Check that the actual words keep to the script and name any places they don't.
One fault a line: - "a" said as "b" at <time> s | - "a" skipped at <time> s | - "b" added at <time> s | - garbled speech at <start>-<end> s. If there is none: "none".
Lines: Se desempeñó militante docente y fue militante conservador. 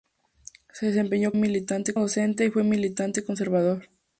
none